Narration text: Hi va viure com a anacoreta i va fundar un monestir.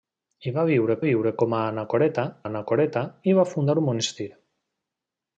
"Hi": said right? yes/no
yes